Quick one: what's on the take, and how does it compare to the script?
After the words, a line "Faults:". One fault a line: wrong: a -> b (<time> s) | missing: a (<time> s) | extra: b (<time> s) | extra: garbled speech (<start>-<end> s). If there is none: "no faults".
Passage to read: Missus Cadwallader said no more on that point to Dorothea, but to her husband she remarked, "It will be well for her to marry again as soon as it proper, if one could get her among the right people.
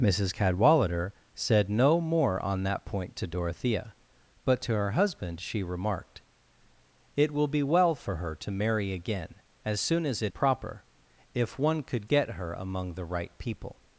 Missus Cadwallader said no more on that point to Dorothea, but to her husband she remarked, "It will be well for her to marry again as soon as it proper, if one could get her among the right people.
Faults:
no faults